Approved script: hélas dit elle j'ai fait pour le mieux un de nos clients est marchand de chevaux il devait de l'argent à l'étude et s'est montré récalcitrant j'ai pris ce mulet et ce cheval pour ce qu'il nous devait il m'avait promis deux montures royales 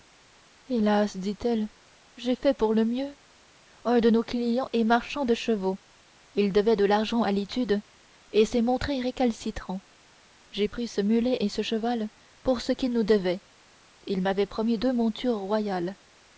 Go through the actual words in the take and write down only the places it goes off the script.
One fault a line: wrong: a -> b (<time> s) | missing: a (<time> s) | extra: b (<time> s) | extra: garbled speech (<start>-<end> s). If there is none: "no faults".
no faults